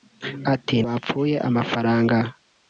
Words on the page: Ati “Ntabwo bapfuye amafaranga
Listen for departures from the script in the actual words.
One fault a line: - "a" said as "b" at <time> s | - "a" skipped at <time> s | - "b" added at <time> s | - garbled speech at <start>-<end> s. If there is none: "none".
- "Ntabwo" skipped at 0.8 s